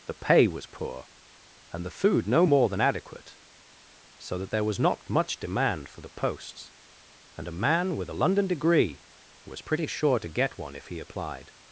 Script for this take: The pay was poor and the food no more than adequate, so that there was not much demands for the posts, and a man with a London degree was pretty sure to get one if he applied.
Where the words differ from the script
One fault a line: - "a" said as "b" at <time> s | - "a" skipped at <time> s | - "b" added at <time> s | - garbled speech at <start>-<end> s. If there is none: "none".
- "demands" said as "demand" at 5.4 s